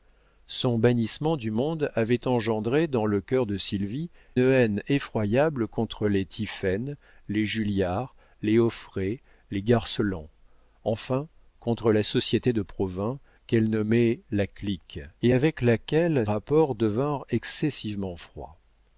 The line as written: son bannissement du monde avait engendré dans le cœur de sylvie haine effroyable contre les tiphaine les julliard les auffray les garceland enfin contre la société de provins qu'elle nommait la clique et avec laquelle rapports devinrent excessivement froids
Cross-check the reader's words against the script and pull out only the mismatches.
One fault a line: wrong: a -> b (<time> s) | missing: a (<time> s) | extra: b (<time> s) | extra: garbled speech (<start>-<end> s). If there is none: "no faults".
no faults